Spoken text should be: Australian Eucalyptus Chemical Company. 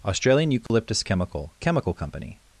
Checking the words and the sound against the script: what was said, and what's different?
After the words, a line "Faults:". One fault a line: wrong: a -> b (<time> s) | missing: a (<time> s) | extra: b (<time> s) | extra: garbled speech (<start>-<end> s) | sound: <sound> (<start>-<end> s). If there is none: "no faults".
Australian Eucalyptus Chemical Chemical Company.
Faults:
sound: dropout (0.7-0.7 s)
extra: Chemical (1.6 s)